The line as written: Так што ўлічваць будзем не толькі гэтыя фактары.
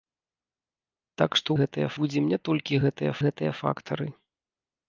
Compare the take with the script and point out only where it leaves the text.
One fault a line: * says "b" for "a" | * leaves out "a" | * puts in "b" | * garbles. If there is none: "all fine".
* says "гэтыя" for "ўлічваць"
* puts in "гэтыя"